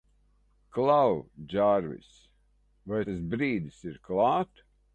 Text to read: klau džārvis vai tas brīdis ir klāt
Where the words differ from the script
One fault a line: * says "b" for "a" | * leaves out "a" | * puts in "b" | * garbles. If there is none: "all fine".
all fine